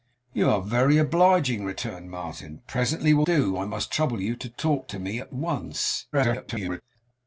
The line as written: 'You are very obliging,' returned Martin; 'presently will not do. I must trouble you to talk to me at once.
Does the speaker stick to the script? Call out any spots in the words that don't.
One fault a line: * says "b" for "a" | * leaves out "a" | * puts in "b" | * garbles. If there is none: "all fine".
* leaves out "not"
* garbles